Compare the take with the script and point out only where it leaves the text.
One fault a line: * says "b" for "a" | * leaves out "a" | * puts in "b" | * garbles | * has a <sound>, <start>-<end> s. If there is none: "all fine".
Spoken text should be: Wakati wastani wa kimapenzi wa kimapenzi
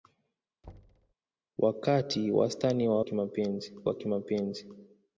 * has a thud, 0.6-1.1 s